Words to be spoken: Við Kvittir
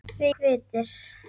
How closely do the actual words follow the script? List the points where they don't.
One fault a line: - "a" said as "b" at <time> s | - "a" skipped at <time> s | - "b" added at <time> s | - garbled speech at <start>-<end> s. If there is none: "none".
none